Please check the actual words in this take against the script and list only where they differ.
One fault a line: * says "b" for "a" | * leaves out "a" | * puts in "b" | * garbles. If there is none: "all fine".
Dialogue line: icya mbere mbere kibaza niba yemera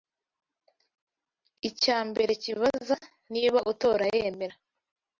* leaves out "mbere"
* puts in "utora"